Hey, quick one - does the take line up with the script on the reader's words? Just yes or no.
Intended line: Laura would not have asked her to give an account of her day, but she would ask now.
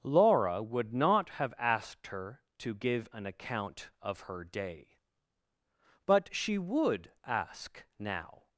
yes